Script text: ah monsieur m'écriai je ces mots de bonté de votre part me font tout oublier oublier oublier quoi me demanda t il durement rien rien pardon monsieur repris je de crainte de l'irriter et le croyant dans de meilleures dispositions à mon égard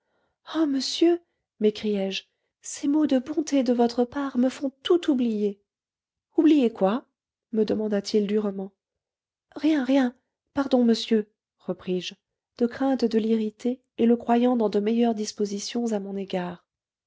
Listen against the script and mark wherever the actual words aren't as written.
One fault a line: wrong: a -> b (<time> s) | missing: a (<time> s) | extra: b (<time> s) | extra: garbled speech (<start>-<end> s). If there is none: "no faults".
missing: oublier (6.7 s)